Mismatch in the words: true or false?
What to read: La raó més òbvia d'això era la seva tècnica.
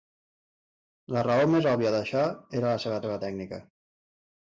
true